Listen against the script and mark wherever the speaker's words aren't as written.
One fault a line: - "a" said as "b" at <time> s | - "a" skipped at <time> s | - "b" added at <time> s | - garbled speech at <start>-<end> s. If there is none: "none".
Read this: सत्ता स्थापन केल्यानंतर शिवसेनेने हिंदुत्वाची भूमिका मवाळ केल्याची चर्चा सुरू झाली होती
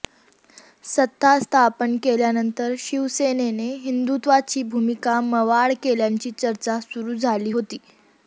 none